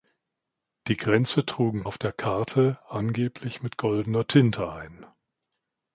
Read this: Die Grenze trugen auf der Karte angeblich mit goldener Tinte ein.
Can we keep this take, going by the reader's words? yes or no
yes